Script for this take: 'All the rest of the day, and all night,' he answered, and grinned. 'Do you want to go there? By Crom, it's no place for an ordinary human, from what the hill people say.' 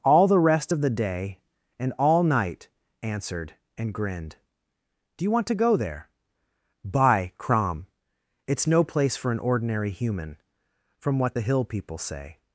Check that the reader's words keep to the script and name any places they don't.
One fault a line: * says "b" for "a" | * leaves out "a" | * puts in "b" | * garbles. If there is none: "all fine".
* leaves out "he"